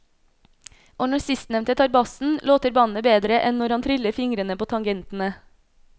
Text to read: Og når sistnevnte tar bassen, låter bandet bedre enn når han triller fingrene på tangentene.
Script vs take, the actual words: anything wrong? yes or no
no